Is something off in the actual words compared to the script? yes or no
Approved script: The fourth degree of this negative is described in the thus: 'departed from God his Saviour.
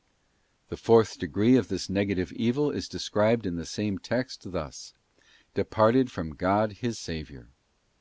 yes